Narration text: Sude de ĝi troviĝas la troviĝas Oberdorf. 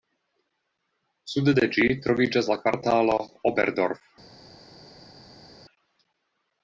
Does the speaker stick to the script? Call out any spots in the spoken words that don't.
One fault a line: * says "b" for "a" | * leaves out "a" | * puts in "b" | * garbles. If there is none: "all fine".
* says "kvartalo" for "troviĝas"